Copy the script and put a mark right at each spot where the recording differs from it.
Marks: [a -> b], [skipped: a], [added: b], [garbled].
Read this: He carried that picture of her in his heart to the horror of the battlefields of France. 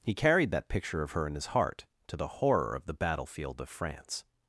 He carried that picture of her in his heart to the horror of the [battlefields -> battlefield] of France.